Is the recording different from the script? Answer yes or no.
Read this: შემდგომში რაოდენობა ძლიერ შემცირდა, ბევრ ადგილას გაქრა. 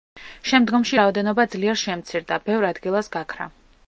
no